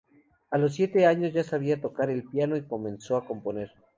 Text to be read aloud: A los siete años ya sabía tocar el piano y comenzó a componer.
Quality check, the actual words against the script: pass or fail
pass